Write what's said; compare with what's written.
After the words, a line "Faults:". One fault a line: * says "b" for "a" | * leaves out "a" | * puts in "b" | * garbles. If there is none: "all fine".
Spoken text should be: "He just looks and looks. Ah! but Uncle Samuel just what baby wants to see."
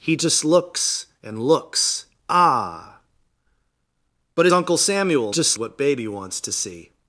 "He just looks and looks. Ah! but Uncle Samuel just what baby wants to see."
Faults:
all fine